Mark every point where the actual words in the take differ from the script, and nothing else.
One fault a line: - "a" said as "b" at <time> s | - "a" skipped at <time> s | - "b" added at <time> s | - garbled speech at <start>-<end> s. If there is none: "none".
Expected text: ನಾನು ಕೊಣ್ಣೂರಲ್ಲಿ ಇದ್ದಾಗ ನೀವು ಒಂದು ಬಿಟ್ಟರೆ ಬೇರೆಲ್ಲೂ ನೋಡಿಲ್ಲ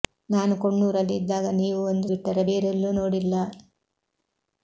none